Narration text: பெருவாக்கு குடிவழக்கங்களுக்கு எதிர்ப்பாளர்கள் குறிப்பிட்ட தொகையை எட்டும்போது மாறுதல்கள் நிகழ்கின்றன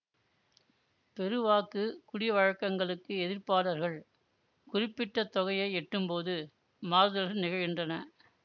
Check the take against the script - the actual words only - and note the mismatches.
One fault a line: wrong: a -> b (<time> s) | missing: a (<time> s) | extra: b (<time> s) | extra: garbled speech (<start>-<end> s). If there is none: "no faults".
no faults